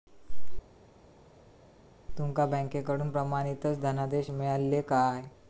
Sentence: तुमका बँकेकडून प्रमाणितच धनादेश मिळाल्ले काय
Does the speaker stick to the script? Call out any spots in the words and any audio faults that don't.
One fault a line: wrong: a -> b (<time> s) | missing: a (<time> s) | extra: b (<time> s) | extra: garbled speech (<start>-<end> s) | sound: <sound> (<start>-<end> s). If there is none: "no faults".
no faults